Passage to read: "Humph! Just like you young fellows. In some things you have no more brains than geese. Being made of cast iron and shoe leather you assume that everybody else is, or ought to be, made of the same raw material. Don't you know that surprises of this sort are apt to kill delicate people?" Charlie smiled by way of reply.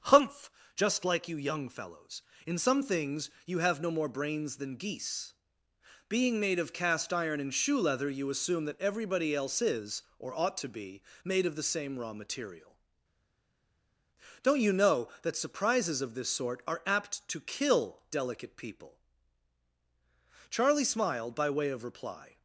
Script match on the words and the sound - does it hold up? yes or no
yes